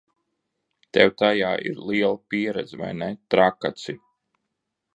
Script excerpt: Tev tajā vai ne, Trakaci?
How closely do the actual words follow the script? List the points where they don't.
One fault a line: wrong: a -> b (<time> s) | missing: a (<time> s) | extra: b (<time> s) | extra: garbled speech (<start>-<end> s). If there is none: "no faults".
extra: ir liela pieredze (1.7 s)